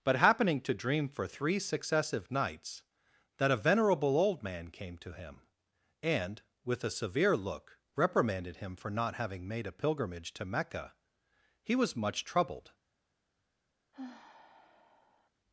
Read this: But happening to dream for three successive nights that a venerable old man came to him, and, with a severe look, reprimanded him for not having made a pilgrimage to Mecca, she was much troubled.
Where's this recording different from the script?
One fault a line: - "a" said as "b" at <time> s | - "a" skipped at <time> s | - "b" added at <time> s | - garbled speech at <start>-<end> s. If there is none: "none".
- "she" said as "he" at 11.6 s